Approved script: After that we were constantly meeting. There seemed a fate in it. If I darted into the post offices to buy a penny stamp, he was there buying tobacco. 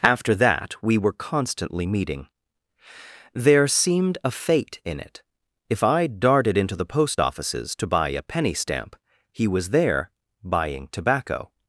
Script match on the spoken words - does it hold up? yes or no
yes